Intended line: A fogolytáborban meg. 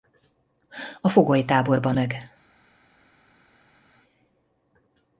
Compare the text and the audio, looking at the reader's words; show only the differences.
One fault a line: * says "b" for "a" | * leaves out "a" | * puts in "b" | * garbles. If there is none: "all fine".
all fine